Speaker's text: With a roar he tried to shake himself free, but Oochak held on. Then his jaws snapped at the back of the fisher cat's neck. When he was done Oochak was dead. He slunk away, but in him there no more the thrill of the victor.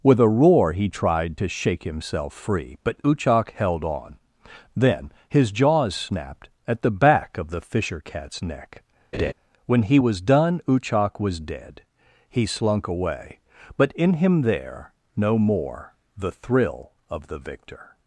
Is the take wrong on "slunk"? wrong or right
right